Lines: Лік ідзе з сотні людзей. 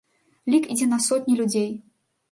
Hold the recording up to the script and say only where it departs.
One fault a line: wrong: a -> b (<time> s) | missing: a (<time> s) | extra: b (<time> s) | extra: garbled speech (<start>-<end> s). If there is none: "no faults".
wrong: з -> на (0.9 s)